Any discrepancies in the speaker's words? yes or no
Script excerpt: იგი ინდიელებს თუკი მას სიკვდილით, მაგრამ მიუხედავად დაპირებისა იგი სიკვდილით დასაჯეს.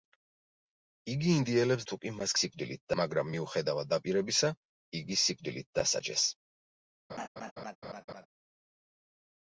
no